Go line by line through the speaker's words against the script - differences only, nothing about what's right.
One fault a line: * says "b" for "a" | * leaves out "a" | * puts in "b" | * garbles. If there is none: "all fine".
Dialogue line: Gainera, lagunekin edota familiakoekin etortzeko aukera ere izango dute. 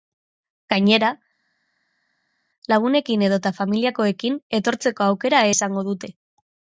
* leaves out "ere"